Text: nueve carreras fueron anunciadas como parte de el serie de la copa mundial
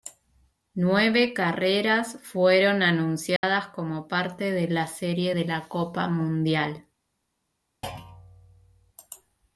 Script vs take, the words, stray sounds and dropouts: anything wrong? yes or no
yes